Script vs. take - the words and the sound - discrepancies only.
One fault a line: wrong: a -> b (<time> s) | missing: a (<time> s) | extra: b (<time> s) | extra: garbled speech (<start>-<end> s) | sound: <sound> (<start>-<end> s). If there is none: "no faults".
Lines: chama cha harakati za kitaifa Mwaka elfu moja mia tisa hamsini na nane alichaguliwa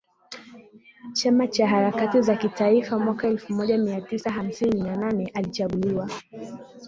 no faults